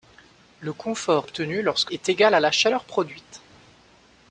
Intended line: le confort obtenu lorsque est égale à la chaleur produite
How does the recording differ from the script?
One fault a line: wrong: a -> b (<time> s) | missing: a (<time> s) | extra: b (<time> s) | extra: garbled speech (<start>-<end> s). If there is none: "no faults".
no faults